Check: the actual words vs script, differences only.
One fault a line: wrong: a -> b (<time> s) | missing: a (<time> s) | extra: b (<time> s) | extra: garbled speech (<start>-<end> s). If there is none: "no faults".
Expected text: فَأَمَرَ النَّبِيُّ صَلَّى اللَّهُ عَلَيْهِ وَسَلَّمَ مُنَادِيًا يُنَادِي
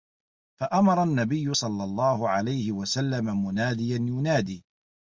no faults